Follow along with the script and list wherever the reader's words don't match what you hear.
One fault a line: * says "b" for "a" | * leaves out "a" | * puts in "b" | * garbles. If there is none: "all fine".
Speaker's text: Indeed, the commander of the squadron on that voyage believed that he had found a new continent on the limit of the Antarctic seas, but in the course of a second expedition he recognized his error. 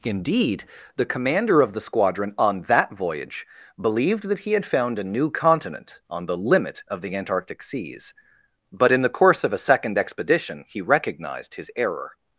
all fine